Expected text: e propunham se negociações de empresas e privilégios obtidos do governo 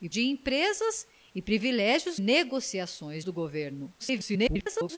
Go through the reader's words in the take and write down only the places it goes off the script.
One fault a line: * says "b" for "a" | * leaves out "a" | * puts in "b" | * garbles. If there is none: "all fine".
* leaves out "propunham se negociações"
* says "negociações" for "obtidos"
* garbles